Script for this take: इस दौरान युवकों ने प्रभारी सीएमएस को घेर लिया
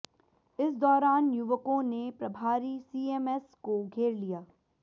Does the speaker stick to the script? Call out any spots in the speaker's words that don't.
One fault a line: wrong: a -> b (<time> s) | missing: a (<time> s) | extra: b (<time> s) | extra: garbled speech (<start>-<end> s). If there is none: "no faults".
no faults